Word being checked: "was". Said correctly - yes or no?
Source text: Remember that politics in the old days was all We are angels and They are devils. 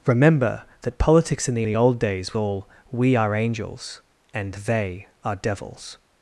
no